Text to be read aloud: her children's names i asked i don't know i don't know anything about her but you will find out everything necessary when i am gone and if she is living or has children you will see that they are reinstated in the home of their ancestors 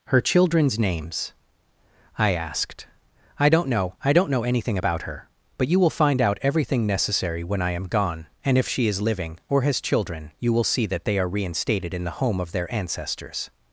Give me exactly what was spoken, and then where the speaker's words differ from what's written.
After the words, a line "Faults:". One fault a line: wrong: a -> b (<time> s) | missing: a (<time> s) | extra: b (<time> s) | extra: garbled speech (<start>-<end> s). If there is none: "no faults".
her children's names i asked i don't know i don't know anything about her but you will find out everything necessary when i am gone and if she is living or has children you will see that they are reinstated in the home of their ancestors
Faults:
no faults